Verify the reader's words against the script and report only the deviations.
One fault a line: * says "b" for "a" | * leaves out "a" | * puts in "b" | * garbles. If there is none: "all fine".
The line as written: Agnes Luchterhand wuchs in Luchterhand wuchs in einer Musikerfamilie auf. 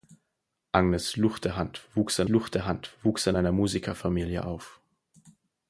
all fine